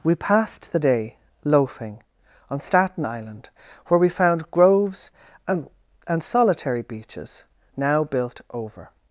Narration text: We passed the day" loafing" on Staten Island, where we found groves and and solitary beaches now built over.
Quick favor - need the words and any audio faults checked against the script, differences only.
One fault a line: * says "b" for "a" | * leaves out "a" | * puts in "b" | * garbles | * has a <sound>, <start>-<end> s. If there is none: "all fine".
all fine